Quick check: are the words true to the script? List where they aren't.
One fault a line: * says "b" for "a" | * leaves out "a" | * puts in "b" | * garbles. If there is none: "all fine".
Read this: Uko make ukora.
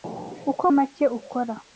all fine